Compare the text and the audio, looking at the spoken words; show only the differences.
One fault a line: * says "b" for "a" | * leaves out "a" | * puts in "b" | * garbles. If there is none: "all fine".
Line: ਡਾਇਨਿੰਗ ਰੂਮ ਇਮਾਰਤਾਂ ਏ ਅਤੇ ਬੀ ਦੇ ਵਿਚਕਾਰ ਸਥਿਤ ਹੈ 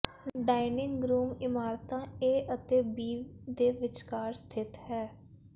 all fine